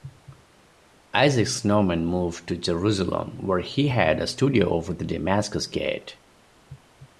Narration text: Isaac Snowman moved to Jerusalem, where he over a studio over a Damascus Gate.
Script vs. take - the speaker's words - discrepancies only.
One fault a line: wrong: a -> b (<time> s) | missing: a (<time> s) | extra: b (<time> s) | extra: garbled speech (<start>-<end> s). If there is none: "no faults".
wrong: over -> had (3.9 s)
wrong: a -> the (4.9 s)